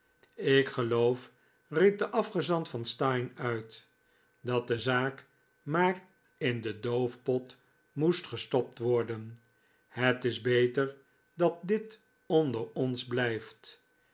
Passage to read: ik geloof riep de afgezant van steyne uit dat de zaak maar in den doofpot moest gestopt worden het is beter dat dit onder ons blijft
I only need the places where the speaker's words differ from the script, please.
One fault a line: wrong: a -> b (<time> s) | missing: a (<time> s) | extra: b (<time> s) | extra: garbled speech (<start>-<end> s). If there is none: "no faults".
no faults